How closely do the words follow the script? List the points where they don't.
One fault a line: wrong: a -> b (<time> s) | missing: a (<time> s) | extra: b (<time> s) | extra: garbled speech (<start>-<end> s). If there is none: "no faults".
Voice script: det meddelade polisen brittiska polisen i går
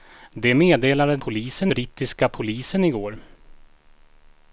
no faults